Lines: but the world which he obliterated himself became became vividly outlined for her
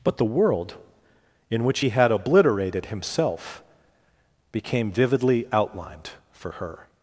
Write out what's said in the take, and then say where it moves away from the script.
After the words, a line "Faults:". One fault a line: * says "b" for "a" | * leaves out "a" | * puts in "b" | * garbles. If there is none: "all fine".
but the world in which he had obliterated himself became vividly outlined for her
Faults:
* puts in "in"
* puts in "had"
* leaves out "became"